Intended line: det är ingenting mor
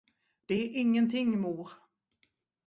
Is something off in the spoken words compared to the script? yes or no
no